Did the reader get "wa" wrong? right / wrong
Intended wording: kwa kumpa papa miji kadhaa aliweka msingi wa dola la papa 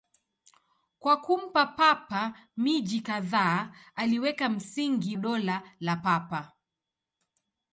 wrong